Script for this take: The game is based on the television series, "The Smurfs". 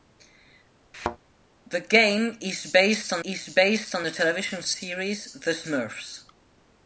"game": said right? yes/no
yes